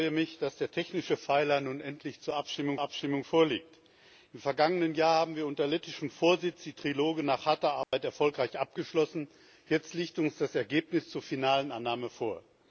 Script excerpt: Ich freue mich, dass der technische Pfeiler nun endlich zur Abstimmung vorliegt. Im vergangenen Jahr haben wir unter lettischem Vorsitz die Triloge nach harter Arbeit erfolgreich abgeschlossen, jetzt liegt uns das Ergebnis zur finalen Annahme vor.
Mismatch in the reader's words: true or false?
true